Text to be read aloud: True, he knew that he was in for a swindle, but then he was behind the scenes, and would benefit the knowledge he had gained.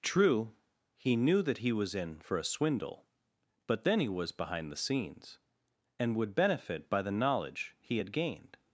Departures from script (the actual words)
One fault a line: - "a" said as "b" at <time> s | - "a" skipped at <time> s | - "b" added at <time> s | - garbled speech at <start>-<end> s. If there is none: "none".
- "by" added at 6.9 s